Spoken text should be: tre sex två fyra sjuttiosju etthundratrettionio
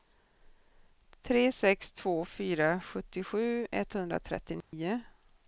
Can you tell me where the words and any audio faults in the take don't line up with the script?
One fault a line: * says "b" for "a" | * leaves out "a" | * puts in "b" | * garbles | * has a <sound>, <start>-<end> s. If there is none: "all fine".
* has a dropout, 4.6-4.7 s